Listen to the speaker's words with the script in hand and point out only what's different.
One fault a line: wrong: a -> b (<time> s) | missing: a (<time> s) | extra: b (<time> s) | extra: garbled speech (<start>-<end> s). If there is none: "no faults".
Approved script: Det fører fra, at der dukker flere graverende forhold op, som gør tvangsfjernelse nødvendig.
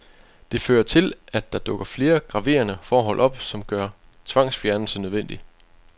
wrong: fra -> til (0.8 s)